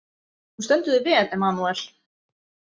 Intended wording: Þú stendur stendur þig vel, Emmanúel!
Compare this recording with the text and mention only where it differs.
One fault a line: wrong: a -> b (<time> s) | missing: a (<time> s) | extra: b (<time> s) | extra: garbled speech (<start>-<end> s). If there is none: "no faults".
missing: stendur (0.9 s)